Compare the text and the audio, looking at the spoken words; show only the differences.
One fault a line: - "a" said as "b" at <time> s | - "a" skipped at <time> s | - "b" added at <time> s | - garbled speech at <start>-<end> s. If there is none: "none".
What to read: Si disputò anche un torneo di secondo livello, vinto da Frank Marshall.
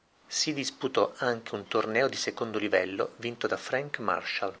none